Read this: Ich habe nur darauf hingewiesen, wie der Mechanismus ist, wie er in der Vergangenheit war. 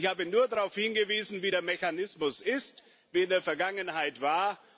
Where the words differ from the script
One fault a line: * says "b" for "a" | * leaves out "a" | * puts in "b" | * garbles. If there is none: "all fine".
all fine